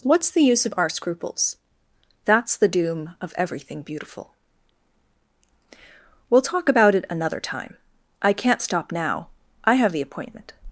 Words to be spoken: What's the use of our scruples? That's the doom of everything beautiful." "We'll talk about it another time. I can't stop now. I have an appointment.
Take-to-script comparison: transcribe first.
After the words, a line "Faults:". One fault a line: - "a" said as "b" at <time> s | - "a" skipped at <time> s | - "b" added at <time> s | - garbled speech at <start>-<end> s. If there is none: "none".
What's the use of our scruples? That's the doom of everything beautiful." "We'll talk about it another time. I can't stop now. I have the appointment.
Faults:
- "an" said as "the" at 9.9 s